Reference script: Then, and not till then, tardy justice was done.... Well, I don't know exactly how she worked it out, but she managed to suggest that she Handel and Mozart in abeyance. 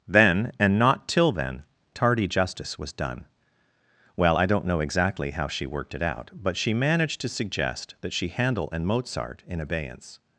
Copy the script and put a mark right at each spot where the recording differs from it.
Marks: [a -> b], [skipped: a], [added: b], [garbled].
Then, and not till then, tardy justice was done.... Well, I don't know exactly how she worked it out, but she managed to suggest that she Handel and Mozart in abeyance.